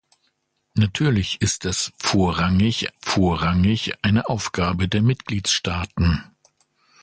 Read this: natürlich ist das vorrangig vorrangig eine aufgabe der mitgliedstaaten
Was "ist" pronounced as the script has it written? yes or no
yes